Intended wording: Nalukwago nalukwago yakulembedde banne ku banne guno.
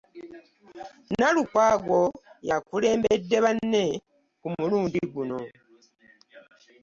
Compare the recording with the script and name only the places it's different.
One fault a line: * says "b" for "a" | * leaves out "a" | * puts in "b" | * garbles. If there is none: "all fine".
* leaves out "nalukwago"
* says "mulundi" for "banne"